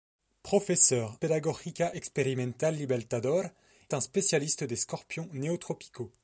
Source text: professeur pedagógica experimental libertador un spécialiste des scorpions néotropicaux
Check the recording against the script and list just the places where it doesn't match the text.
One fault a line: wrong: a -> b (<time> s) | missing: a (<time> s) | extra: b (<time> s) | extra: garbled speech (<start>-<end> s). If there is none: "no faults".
no faults